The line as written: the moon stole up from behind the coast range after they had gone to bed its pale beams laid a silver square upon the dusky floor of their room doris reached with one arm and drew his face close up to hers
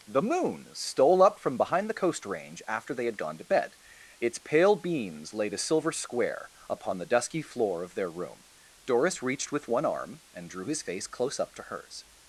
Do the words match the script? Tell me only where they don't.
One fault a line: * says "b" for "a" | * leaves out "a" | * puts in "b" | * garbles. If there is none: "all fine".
all fine